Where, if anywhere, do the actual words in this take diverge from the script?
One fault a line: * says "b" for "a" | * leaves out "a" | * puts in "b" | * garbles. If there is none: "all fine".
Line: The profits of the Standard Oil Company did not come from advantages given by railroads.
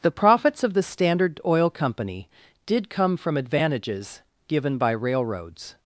* leaves out "not"